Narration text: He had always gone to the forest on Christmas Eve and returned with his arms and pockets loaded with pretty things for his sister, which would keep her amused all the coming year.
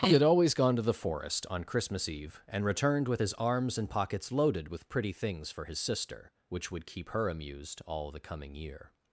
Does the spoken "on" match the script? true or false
true